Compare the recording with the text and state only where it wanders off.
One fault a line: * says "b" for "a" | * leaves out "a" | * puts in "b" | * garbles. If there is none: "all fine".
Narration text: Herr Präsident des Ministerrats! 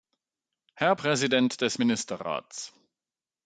all fine